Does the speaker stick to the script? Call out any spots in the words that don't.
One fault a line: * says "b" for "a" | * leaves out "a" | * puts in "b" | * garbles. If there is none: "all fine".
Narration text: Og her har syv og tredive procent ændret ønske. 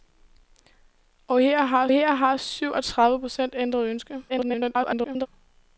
* puts in "her har"
* garbles